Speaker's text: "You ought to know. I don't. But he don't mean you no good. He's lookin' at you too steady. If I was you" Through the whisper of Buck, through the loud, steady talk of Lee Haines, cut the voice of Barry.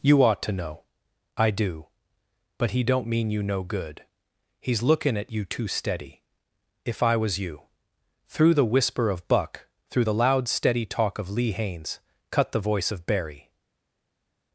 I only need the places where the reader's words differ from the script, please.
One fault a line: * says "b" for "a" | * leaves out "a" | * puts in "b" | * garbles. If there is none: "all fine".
* says "do" for "don't"